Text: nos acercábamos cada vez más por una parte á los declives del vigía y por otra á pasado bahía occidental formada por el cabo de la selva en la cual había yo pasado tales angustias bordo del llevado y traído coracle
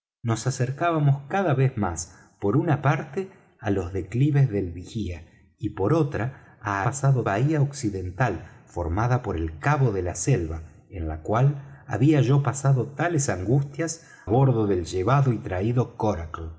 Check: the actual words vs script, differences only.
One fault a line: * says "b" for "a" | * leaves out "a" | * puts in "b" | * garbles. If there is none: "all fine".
all fine